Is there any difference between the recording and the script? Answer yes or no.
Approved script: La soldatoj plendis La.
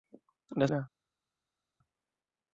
yes